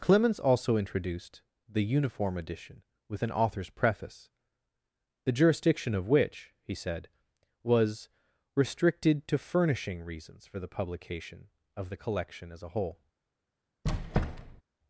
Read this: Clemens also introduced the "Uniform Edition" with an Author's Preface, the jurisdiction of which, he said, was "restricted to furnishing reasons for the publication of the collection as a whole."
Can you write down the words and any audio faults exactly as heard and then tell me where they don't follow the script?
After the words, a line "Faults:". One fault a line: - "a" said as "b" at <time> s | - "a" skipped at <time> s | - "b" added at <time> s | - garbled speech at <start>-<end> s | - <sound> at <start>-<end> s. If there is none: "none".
Clemens also introduced the "Uniform Edition" with an Author's Preface, the jurisdiction of which, he said, was "restricted to furnishing reasons for the publication of the collection as a whole."
Faults:
- squeak at 13.8-14.6 s